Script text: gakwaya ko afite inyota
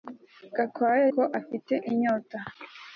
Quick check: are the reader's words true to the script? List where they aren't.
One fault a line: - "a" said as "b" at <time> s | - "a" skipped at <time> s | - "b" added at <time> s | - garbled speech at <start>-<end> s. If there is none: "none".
none